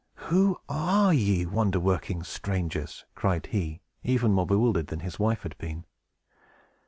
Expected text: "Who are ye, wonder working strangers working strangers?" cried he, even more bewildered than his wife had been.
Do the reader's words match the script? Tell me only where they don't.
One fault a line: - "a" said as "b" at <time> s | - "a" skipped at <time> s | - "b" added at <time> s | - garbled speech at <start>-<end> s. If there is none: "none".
- "working strangers" skipped at 3.0 s